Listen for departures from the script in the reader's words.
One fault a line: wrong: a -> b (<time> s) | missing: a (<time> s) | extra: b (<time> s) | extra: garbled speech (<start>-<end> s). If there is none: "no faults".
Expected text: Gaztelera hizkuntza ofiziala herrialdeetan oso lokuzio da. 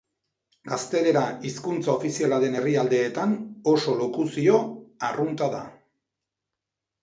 extra: den (2.5 s)
extra: arrunta (5.1 s)